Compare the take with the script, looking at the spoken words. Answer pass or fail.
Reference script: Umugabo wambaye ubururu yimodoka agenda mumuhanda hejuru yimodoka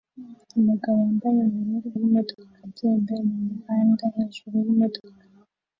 pass